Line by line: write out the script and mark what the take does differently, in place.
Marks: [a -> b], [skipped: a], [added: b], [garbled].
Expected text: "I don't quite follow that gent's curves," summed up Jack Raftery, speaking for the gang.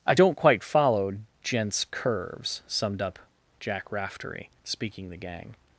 "I don't quite follow [skipped: that] gent's curves," summed up Jack Raftery, speaking [skipped: for] the gang.